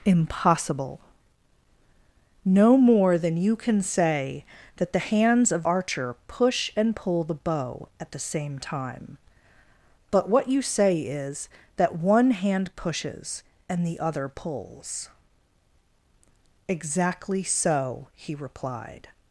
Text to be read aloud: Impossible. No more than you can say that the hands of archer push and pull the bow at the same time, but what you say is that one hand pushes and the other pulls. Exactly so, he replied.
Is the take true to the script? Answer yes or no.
yes